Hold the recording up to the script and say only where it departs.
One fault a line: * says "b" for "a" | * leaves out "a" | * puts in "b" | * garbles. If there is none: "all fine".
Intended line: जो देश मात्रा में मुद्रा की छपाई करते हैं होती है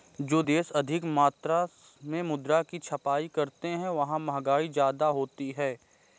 * puts in "अधिक"
* puts in "वहां महंगाई ज्यादा"